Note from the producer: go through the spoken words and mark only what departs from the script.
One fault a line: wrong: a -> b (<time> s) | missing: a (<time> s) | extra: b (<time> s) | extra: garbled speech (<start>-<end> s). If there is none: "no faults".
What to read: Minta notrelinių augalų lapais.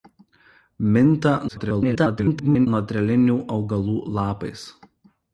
extra: garbled speech (1.5-2.7 s)